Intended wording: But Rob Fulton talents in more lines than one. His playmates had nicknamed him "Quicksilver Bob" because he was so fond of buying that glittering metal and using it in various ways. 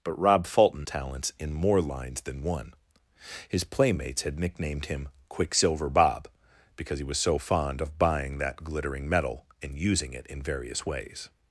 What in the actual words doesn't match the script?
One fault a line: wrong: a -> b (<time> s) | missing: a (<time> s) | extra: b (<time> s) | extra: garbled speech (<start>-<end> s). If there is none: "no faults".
no faults